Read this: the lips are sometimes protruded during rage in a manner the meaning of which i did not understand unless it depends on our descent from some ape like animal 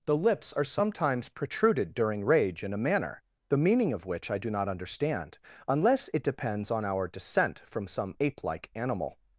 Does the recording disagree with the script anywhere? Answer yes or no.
yes